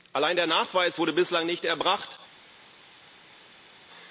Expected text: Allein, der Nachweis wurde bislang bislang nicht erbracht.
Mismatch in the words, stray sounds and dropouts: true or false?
true